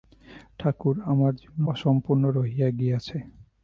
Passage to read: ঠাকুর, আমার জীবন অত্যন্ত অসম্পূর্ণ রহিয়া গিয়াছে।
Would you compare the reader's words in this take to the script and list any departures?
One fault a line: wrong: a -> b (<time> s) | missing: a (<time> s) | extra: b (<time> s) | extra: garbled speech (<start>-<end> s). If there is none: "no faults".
missing: অত্যন্ত (1.6 s)